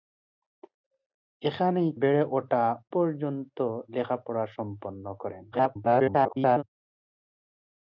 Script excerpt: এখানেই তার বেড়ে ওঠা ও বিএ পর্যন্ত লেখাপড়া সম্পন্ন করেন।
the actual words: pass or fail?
fail